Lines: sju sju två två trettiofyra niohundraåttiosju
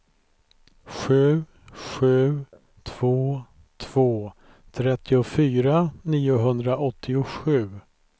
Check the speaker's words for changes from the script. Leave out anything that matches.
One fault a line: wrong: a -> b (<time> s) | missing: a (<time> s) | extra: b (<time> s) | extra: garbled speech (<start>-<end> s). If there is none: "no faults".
no faults